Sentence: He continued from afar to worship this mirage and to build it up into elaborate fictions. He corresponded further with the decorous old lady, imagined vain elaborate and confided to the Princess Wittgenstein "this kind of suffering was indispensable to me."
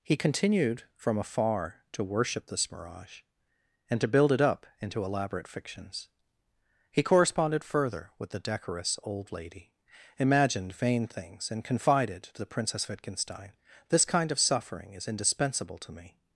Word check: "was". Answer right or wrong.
wrong